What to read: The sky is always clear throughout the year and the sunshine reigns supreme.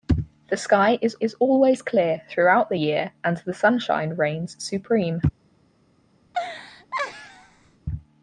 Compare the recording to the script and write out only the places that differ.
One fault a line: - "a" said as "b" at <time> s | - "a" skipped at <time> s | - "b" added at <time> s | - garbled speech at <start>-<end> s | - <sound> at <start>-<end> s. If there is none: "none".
- "is" added at 1.2 s
- laugh at 6.3-7.8 s